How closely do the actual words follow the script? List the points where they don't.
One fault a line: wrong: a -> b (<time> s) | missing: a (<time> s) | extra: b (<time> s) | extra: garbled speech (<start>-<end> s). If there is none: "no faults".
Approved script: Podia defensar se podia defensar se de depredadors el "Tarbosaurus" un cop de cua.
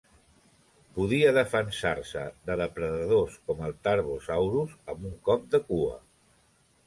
missing: podia defensar se (2.2 s)
extra: com (3.5 s)
extra: amb (5.0 s)